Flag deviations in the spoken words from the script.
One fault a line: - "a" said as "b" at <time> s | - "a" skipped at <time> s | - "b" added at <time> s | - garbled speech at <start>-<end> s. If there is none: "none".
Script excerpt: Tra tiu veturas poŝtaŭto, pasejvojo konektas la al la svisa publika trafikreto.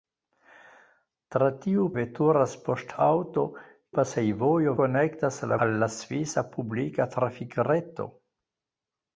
none